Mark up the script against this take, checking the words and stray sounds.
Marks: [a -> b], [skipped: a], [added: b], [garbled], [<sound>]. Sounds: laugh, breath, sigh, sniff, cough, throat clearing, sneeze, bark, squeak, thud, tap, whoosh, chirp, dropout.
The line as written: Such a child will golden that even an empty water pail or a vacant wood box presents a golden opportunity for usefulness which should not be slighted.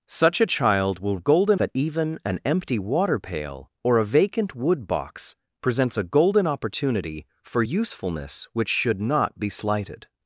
Such a child will golden that even an empty water pail or a vacant wood box presents a golden opportunity for usefulness which should not be slighted.